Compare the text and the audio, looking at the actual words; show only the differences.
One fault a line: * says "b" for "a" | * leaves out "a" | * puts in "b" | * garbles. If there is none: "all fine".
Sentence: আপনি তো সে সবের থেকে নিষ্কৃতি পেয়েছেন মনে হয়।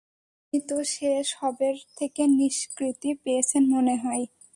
all fine